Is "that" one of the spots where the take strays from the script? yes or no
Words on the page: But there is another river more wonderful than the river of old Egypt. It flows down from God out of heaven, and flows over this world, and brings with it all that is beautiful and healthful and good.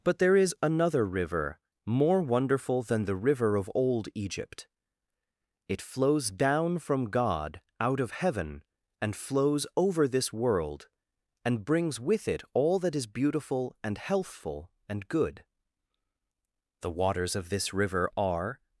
no